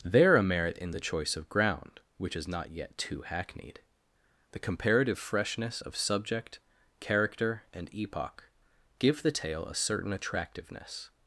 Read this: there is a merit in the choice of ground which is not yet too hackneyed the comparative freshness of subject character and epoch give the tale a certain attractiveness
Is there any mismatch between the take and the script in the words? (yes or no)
yes